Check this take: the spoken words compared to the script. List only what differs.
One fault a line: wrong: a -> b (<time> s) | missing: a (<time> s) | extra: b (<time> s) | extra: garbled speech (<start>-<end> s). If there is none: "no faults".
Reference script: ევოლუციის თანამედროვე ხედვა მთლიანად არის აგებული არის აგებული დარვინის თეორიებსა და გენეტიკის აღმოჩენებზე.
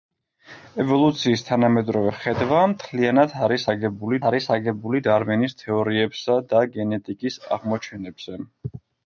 no faults